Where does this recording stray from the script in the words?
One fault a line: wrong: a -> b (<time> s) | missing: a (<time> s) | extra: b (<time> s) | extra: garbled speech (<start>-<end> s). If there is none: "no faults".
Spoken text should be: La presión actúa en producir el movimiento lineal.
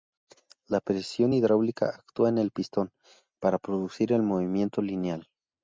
extra: hidráulica (1.3 s)
extra: el pistón para (2.4 s)